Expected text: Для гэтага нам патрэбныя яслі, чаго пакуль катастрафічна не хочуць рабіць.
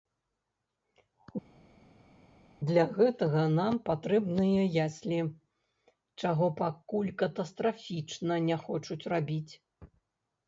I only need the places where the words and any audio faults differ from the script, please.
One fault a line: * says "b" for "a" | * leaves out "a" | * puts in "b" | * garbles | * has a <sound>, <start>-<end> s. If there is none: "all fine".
all fine